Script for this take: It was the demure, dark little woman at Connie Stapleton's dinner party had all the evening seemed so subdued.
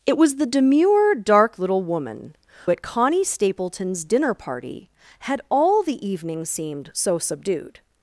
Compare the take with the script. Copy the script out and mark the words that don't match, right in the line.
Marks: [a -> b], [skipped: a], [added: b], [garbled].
It was the demure, dark little woman at Connie Stapleton's dinner party had all the evening seemed so subdued.